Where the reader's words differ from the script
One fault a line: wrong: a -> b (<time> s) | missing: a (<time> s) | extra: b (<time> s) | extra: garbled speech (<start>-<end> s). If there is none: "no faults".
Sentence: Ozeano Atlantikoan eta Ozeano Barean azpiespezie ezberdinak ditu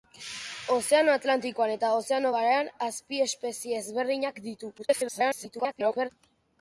extra: garbled speech (4.8-6.1 s)